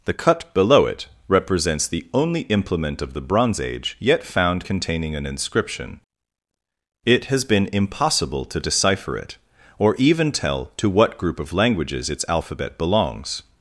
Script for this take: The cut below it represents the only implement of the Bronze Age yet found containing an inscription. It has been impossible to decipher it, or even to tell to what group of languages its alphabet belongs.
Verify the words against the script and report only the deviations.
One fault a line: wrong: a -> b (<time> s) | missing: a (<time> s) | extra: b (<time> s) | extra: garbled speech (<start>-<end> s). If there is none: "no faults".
missing: to (10.3 s)